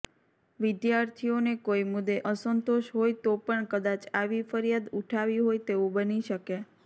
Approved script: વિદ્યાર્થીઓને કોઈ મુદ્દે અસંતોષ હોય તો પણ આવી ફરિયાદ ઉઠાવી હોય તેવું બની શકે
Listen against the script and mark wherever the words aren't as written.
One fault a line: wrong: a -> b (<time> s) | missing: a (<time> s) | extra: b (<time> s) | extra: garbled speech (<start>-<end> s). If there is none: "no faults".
extra: કદાચ (3.7 s)